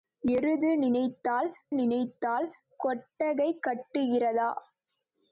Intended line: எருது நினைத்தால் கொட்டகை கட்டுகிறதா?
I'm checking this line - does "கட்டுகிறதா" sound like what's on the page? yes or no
yes